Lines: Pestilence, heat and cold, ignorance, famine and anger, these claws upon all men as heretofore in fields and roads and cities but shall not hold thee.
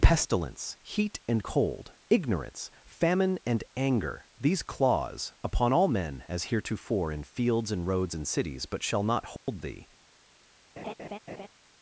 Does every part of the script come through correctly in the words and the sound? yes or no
no